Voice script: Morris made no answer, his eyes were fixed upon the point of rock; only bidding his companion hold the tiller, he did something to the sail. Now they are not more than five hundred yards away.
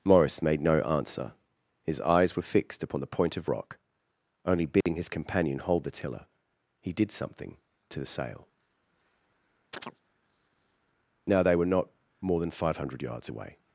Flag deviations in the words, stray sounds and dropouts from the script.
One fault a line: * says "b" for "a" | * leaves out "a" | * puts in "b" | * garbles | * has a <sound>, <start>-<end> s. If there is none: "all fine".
* has a dropout, 4.8-4.9 s
* has a chirp, 9.7-10.0 s
* says "were" for "are"